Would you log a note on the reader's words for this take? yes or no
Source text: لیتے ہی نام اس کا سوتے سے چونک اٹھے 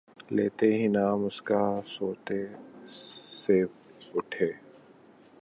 yes